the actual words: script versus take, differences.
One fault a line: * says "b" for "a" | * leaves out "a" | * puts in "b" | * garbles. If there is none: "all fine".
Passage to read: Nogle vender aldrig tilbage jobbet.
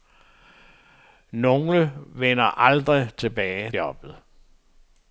all fine